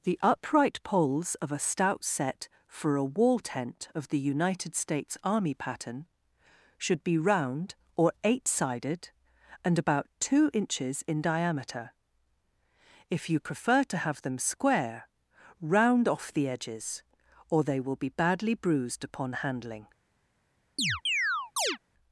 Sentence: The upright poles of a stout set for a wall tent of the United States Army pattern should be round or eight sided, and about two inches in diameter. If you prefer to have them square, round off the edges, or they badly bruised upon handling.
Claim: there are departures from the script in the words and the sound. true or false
true